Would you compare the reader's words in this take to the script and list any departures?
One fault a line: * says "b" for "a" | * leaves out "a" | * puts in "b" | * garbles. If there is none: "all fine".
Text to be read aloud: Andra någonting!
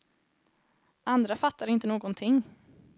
* puts in "fattar inte"